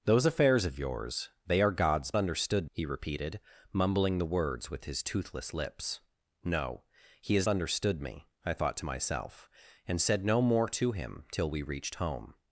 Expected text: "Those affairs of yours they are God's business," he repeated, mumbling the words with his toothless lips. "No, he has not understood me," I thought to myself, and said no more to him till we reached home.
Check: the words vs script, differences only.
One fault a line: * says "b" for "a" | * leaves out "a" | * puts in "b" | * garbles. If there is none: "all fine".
* says "understood" for "business"
* leaves out "not"